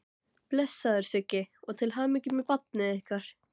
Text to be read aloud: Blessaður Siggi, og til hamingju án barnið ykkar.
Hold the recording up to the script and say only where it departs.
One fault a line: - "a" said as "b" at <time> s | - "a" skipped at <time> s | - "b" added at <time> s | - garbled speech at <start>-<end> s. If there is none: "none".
- "án" said as "með" at 2.4 s